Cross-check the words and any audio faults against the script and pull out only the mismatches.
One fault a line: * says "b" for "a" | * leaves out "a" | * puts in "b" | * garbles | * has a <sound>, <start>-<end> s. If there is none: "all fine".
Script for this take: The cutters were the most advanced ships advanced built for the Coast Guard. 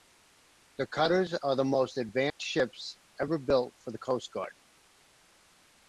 * says "are" for "were"
* has a dropout, 2.3-2.4 s
* says "ever" for "advanced"